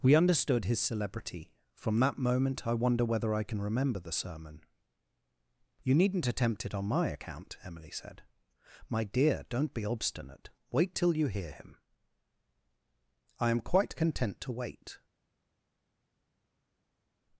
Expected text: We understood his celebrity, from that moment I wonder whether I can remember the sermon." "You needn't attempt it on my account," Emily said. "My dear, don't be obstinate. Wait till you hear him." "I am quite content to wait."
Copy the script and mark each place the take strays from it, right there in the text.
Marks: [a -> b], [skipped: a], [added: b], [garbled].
We understood his celebrity, from that moment I wonder whether I can remember the sermon." "You needn't attempt it on my account," Emily said. "My dear, don't be obstinate. Wait till you hear him." "I am quite content to wait."